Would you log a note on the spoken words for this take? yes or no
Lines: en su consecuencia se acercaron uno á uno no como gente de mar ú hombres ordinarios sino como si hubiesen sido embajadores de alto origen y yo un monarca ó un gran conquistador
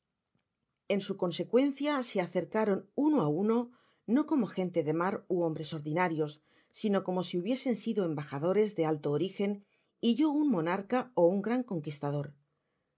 no